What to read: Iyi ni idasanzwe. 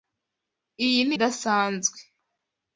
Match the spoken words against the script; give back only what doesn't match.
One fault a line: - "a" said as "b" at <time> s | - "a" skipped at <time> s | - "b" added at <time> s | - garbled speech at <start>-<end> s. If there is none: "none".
none